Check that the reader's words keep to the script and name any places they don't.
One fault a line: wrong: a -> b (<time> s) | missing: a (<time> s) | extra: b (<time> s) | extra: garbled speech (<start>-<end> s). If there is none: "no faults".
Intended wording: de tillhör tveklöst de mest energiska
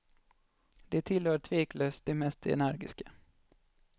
no faults